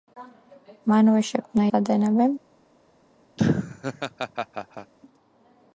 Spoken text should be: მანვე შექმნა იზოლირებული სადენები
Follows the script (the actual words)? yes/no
no